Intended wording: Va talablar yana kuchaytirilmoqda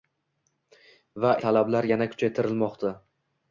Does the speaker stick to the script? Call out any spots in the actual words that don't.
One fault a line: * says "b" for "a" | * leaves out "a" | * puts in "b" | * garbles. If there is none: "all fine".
all fine